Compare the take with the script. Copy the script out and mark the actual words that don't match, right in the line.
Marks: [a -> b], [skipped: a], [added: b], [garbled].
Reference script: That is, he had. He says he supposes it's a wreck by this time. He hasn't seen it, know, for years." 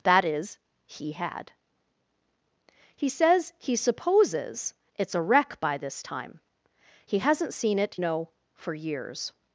That is, he had. He says he supposes it's a wreck by this time. He hasn't seen it, know, for years."